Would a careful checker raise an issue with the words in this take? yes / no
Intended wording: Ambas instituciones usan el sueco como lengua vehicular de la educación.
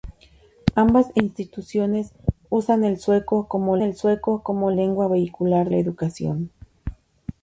yes